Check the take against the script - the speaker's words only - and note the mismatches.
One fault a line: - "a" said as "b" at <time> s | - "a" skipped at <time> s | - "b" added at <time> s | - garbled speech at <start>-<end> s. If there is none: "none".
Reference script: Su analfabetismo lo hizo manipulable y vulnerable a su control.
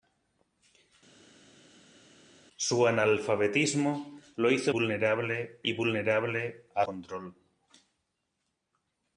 - "manipulable" said as "vulnerable" at 4.7 s
- "su" skipped at 6.9 s